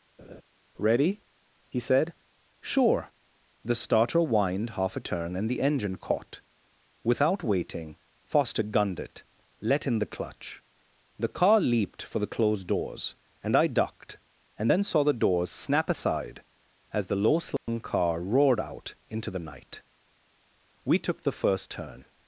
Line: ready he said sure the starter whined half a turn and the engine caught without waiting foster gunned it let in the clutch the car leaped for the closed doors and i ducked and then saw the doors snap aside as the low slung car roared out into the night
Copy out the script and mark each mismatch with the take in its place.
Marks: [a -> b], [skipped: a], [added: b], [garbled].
ready he said sure the starter whined half a turn and the engine caught without waiting foster gunned it let in the clutch the car leaped for the closed doors and i ducked and then saw the doors snap aside as the low slung car roared out into the night [added: we took the first turn]